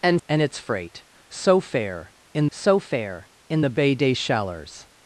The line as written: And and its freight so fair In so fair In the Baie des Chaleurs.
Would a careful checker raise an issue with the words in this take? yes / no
no